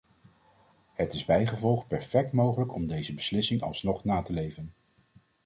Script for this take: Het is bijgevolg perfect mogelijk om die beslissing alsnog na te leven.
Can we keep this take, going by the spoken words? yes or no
no